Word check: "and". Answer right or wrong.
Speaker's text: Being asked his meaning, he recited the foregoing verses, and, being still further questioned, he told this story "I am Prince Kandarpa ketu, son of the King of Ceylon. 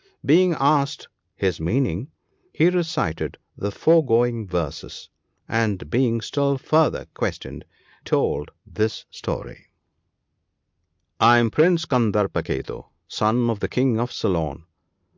right